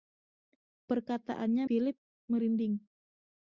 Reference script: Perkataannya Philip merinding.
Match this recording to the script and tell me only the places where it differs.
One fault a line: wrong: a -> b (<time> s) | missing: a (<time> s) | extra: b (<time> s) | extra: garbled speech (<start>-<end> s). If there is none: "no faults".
no faults